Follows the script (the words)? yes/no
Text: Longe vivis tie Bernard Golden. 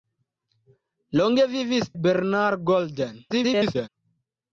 no